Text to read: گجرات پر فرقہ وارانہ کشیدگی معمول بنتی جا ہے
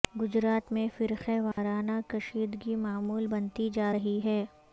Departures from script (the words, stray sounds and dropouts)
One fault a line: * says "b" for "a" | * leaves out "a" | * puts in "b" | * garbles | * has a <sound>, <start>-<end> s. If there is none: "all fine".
* says "میں" for "پر"
* has a dropout, 1.5-1.6 s
* puts in "رہی"